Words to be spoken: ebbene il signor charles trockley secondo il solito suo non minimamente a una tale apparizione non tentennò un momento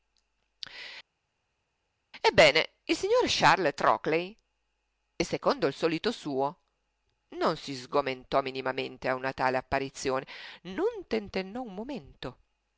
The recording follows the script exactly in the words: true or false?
false